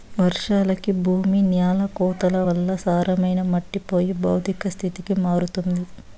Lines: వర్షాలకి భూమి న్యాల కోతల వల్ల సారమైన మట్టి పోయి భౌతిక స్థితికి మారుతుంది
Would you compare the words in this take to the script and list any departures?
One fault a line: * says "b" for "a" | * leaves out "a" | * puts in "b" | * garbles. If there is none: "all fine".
all fine